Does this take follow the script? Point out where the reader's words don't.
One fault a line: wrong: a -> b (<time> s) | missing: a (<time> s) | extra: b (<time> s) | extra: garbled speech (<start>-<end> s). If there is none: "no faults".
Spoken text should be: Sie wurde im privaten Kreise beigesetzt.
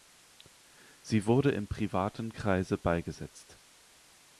no faults